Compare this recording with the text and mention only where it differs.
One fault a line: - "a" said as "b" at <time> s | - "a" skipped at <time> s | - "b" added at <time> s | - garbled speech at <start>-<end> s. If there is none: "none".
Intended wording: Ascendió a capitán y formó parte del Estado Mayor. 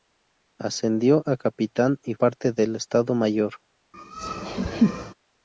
- "formó" skipped at 2.1 s